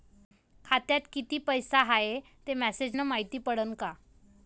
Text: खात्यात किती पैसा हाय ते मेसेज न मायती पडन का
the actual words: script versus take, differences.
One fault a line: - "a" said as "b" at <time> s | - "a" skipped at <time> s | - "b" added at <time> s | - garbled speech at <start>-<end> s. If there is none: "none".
none